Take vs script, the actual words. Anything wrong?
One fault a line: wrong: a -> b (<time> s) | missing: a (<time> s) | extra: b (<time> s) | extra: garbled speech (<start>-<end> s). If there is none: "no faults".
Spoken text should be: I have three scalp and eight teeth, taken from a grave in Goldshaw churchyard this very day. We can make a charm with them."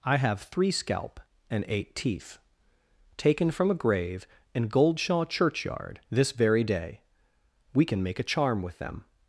no faults